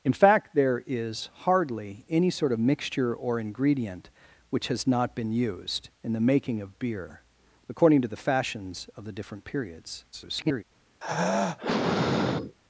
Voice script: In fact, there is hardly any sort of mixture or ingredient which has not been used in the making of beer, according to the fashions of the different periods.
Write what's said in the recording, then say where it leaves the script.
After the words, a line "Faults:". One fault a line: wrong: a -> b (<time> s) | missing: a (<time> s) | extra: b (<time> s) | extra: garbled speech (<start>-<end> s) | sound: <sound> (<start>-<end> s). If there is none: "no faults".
In fact, there is hardly any sort of mixture or ingredient which has not been used in the making of beer, according to the fashions of the different periods. [garbled]
Faults:
extra: garbled speech (10.1-10.6 s)
sound: sigh (11.0-12.5 s)